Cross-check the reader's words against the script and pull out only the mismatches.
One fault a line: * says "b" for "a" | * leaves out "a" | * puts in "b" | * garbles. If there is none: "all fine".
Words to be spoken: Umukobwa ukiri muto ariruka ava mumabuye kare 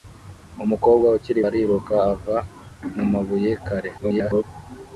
* leaves out "muto"
* garbles